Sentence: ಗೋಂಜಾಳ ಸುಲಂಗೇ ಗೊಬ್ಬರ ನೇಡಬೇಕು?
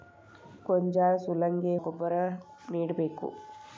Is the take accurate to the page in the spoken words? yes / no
yes